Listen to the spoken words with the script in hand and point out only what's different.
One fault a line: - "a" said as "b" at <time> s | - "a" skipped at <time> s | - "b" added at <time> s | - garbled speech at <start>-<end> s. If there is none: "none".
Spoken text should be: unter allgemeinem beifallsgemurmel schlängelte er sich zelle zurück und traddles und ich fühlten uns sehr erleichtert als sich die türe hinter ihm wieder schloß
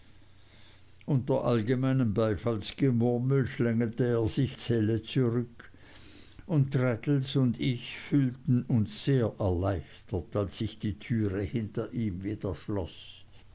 none